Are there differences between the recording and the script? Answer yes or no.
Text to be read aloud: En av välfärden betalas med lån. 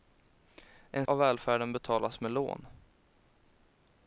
no